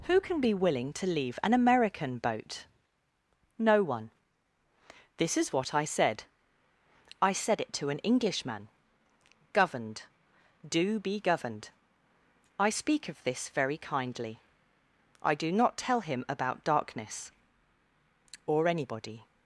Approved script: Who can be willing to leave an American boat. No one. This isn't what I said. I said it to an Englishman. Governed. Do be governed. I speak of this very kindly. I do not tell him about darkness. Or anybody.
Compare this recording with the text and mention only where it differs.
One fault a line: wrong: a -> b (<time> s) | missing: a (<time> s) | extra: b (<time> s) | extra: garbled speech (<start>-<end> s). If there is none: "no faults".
wrong: isn't -> is (5.4 s)